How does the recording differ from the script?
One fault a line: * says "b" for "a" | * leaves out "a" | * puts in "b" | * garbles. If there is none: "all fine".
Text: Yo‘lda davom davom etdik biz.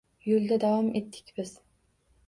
* leaves out "davom"